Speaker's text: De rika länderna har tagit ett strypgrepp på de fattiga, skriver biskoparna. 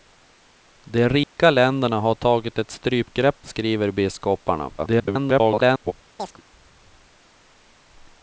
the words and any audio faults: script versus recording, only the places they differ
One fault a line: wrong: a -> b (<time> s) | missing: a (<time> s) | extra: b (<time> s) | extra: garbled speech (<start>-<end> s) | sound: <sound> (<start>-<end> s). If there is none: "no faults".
sound: dropout (1.2-1.4 s)
missing: på de fattiga (3.4 s)
extra: garbled speech (4.8-5.9 s)
sound: chirp (6.2-6.4 s)